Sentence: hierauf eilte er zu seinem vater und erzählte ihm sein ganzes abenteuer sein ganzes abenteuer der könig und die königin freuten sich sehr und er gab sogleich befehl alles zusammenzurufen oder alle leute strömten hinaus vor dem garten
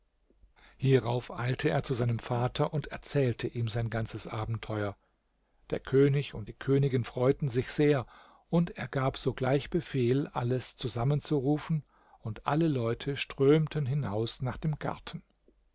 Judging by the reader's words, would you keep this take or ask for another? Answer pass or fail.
fail